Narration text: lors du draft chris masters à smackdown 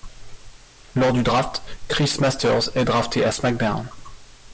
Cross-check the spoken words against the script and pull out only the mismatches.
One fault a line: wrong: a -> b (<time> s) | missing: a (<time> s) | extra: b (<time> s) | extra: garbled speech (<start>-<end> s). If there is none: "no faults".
extra: est drafté (2.8 s)